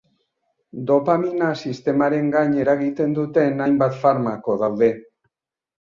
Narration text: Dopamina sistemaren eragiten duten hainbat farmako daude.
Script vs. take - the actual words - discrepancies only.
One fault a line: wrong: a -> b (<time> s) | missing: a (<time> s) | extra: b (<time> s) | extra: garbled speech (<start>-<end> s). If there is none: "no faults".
extra: gain (2.4 s)